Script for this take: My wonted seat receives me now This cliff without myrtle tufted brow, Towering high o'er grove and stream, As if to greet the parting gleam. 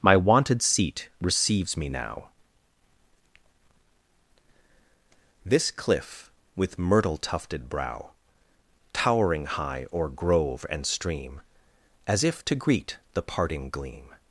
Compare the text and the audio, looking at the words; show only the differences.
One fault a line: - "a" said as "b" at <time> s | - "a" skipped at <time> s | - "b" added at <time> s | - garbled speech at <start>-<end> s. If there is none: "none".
- "without" said as "with" at 6.5 s